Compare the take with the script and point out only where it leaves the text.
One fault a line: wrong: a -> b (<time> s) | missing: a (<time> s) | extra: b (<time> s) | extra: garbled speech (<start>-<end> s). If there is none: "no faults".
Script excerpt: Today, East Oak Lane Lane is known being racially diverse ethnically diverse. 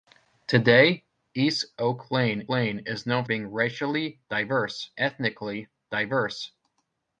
no faults